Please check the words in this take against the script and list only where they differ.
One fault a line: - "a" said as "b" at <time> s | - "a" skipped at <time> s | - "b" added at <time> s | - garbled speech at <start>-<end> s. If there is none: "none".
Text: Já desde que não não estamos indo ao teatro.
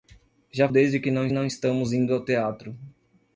none